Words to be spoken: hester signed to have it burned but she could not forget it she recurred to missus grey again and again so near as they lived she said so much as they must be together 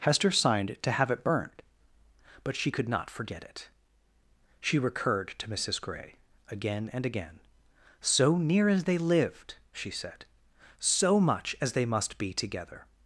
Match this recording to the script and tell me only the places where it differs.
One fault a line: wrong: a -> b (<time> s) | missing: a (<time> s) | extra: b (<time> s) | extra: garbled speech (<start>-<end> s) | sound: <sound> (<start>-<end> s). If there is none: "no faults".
no faults